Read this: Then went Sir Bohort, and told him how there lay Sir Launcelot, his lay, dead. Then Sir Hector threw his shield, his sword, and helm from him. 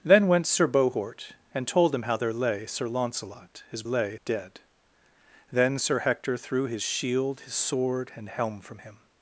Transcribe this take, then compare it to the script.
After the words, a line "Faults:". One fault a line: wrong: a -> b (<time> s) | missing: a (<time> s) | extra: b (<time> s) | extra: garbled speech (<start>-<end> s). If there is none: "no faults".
Then went Sir Bohort, and told him how there lay Sir Launcelot, his lay, dead. Then Sir Hector threw his shield, his sword, and helm from him.
Faults:
no faults